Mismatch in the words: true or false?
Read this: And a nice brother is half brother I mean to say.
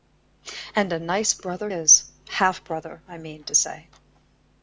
false